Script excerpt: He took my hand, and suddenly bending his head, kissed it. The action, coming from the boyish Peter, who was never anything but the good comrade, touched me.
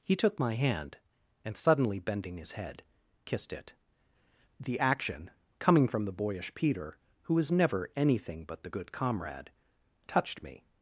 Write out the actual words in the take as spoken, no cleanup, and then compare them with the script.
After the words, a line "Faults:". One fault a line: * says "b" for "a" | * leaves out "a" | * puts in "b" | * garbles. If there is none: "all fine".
He took my hand, and suddenly bending his head, kissed it. The action, coming from the boyish Peter, who was never anything but the good comrade, touched me.
Faults:
all fine